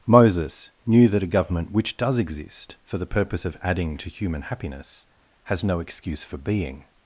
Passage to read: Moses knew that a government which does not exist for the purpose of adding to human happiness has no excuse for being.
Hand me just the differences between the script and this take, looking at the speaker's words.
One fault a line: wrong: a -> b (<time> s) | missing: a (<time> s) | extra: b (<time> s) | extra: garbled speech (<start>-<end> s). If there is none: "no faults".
missing: not (2.2 s)